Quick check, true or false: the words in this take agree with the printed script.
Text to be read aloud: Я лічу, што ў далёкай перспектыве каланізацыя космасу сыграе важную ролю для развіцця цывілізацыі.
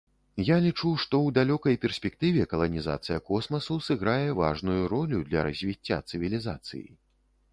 true